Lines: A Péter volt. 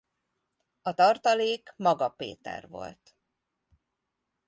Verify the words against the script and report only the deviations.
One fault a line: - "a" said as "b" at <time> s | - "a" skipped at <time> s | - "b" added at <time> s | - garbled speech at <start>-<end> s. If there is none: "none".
- "tartalék Maga" added at 0.9 s